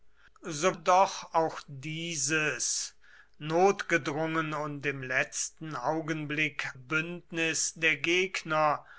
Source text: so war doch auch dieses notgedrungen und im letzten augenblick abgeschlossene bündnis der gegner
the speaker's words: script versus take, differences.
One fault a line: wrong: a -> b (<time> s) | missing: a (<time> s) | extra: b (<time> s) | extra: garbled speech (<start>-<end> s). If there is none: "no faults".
missing: war (0.8 s)
missing: abgeschlossene (6.7 s)